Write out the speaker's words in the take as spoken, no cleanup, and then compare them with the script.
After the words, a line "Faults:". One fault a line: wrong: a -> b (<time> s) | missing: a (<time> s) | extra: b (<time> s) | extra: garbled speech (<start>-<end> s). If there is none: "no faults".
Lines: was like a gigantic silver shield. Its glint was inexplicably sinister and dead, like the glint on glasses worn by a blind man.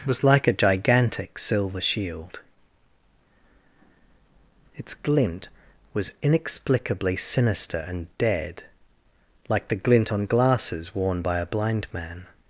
was like a gigantic silver shield. Its glint was inexplicably sinister and dead, like the glint on glasses worn by a blind man.
Faults:
no faults